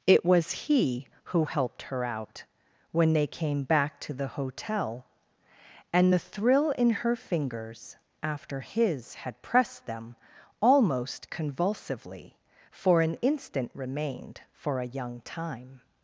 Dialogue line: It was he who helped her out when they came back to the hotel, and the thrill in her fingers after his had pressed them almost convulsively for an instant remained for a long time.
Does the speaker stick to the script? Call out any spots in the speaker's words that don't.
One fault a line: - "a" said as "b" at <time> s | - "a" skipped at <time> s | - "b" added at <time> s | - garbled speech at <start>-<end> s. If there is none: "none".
- "long" said as "young" at 14.9 s